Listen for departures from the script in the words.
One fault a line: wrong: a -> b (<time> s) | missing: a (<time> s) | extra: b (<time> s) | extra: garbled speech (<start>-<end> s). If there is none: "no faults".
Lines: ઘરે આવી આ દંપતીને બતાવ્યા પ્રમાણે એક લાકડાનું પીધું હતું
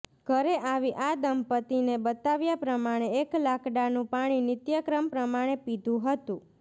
extra: પાણી નિત્યક્રમ પ્રમાણે (4.1 s)